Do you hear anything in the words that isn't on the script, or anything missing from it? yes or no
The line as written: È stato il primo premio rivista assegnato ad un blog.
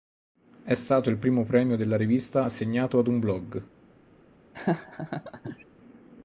yes